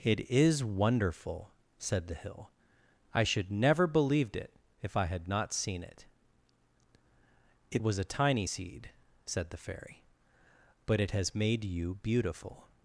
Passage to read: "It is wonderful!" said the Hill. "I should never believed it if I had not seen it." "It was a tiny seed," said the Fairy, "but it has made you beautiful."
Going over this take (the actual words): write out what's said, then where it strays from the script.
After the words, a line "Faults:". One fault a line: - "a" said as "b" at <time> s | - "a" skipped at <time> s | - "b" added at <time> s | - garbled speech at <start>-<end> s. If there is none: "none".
"It is wonderful!" said the Hill. "I should never believed it if I had not seen it." "It was a tiny seed," said the Fairy, "but it has made you beautiful."
Faults:
none